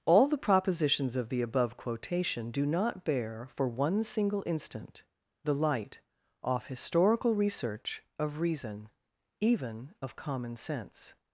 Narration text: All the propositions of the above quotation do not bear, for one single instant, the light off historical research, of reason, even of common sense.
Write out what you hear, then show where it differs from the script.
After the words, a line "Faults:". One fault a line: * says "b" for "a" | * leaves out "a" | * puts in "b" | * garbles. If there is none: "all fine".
All the propositions of the above quotation do not bear, for one single instant, the light off historical research, of reason, even of common sense.
Faults:
all fine